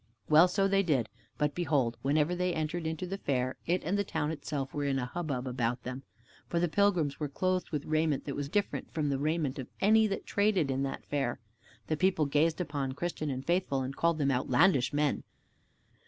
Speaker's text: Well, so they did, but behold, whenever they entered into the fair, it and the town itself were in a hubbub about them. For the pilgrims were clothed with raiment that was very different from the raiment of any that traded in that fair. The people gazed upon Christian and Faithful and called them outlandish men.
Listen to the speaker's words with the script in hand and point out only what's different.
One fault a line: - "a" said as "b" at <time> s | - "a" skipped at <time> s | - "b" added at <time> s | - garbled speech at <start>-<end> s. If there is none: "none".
- "very" skipped at 8.5 s